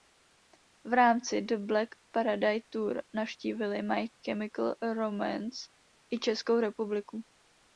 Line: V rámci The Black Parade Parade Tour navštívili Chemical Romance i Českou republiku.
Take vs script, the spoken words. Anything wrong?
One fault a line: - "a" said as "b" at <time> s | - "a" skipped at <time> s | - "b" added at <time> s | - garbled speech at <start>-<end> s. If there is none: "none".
- "Parade" skipped at 2.6 s
- "My" added at 3.8 s